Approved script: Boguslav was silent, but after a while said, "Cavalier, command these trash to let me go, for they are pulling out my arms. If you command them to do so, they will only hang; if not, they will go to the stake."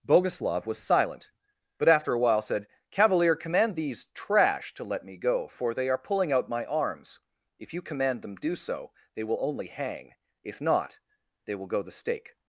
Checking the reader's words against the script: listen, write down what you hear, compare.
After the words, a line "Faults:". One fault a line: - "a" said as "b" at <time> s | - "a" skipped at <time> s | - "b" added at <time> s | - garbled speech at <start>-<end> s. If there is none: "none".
Boguslav was silent, but after a while said, "Cavalier, command these trash to let me go, for they are pulling out my arms. If you command them do so, they will only hang; if not, they will go the stake."
Faults:
- "to" skipped at 8.3 s
- "to" skipped at 11.8 s